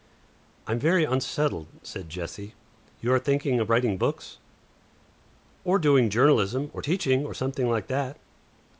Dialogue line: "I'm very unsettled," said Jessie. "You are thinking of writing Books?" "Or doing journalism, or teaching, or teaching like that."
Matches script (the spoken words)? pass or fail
fail